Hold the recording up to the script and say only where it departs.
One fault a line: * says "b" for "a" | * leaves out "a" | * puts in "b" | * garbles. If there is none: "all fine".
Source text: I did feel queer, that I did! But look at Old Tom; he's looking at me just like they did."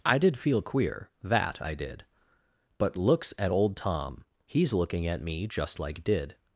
* says "looks" for "look"
* leaves out "they"